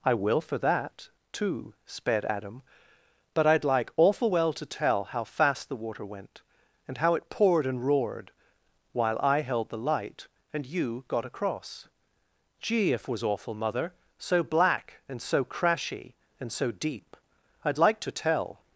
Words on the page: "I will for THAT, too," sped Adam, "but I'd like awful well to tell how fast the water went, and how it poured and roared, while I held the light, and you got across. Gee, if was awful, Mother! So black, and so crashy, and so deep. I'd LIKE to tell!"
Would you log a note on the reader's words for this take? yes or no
no